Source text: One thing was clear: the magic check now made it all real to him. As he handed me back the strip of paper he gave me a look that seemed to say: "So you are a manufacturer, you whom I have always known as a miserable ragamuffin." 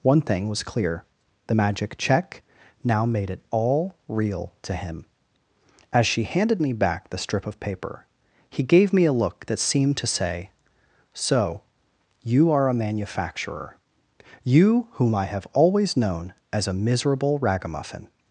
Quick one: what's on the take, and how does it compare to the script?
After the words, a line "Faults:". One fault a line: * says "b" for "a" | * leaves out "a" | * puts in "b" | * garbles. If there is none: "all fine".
One thing was clear: the magic check now made it all real to him. As she handed me back the strip of paper he gave me a look that seemed to say: "So you are a manufacturer, you whom I have always known as a miserable ragamuffin."
Faults:
* says "she" for "he"